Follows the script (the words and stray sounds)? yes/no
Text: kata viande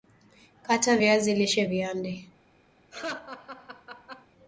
no